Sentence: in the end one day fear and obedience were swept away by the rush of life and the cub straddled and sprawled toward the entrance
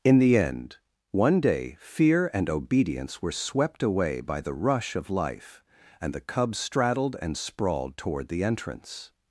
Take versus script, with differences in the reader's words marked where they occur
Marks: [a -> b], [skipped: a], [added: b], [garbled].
in the end one day fear and obedience were swept away by the rush of life and the cub straddled and sprawled toward the entrance